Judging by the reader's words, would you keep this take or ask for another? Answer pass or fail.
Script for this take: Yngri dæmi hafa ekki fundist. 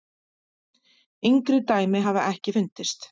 pass